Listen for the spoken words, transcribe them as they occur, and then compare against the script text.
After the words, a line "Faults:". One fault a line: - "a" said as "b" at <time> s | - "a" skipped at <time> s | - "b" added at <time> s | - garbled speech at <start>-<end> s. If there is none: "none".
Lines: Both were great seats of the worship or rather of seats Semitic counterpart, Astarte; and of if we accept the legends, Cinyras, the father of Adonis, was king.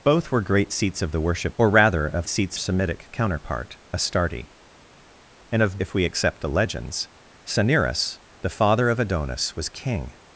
Both were great seats of the worship or rather of seats Semitic counterpart, Astarte; and of if we accept the legends, Cinyras, the father of Adonis, was king.
Faults:
none